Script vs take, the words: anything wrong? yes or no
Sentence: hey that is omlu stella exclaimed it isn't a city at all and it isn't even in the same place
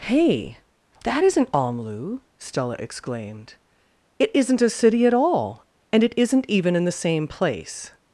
yes